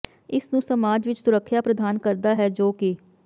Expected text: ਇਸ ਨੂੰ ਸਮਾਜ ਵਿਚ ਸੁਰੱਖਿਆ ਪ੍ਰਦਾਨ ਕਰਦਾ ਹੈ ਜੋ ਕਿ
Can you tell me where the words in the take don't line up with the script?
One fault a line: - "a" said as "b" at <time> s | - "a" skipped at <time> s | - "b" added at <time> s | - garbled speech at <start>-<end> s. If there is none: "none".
none